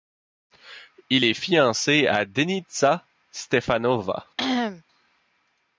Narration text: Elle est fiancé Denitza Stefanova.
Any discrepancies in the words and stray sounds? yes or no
yes